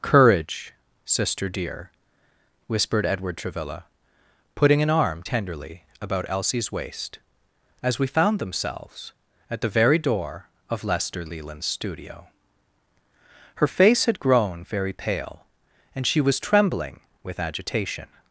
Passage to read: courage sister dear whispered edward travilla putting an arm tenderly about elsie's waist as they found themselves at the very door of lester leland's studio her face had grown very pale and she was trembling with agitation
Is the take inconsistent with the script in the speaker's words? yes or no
yes